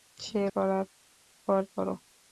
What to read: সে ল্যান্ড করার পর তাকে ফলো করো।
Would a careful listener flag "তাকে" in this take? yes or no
yes